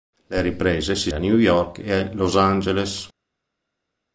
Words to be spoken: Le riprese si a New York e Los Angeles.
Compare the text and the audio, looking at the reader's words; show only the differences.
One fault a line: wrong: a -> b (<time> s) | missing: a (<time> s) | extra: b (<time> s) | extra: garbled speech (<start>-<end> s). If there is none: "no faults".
no faults